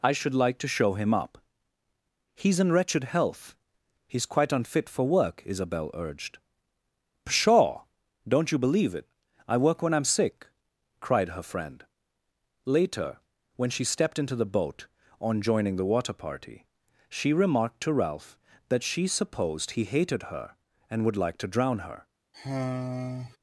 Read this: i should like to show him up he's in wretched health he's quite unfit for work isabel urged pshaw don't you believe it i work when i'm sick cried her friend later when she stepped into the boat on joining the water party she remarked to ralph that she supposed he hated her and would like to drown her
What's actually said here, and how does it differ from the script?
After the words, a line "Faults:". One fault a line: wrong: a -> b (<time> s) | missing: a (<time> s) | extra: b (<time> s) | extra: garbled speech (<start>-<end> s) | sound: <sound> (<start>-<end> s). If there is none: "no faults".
i should like to show him up he's in wretched health he's quite unfit for work isabel urged pshaw don't you believe it i work when i'm sick cried her friend later when she stepped into the boat on joining the water party she remarked to ralph that she supposed he hated her and would like to drown her
Faults:
sound: sigh (22.3-23.4 s)